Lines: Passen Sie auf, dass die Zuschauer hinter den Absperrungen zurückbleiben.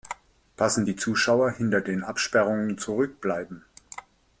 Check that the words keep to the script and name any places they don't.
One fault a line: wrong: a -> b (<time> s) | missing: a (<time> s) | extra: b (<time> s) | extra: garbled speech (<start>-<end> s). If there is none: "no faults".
missing: Sie auf dass (0.9 s)